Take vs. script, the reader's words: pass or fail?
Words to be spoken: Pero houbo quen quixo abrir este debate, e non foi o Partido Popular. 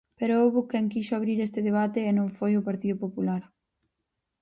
pass